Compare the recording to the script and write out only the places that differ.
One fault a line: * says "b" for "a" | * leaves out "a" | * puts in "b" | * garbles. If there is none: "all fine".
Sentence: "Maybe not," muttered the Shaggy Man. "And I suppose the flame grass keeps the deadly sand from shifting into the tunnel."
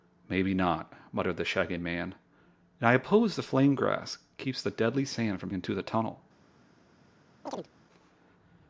* leaves out "shifting"